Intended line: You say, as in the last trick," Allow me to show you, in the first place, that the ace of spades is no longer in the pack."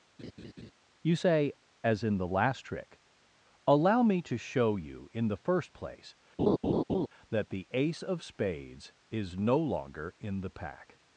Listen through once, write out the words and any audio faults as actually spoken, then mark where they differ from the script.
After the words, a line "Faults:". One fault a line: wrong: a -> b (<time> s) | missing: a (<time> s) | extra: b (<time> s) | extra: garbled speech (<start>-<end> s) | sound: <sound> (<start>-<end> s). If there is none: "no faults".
You say, as in the last trick," Allow me to show you, in the first place, that the ace of spades is no longer in the pack."
Faults:
sound: laugh (0.2-0.7 s)
sound: laugh (6.4-7.1 s)